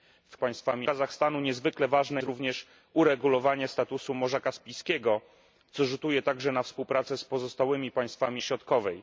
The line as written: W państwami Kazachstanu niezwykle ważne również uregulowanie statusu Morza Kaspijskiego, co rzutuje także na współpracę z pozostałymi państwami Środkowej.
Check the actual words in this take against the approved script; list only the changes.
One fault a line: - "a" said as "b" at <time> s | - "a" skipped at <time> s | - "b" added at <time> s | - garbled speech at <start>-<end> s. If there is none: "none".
none